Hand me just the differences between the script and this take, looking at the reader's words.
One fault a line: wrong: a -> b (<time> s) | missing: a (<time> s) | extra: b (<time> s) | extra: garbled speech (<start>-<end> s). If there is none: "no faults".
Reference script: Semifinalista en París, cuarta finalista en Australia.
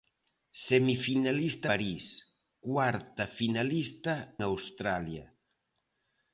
missing: en (1.7 s)
missing: en (4.1 s)